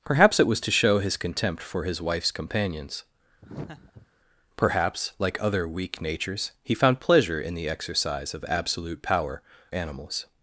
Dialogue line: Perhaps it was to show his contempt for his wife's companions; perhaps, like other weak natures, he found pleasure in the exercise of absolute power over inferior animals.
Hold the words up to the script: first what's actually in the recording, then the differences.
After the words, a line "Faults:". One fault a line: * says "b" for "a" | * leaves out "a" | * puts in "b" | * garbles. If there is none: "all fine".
Perhaps it was to show his contempt for his wife's companions; perhaps, like other weak natures, he found pleasure in the exercise of absolute power animals.
Faults:
* leaves out "over inferior"